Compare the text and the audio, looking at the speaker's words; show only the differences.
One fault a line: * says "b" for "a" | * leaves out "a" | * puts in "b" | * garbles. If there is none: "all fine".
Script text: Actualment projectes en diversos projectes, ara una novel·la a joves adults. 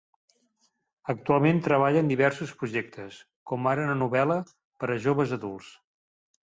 * says "treballa" for "projectes"
* puts in "com"
* puts in "per"